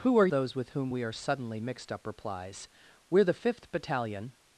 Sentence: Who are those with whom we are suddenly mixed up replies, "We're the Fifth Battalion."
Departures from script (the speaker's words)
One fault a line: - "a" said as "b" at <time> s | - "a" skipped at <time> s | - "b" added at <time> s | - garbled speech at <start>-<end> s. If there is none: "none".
none